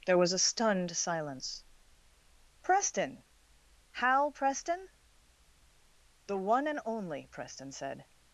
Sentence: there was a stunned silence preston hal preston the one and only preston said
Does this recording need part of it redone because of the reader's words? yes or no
no